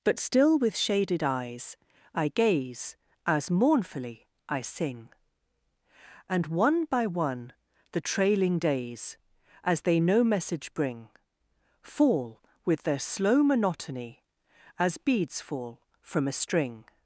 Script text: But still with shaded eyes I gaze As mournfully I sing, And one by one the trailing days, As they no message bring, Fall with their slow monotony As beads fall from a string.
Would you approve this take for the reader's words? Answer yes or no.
yes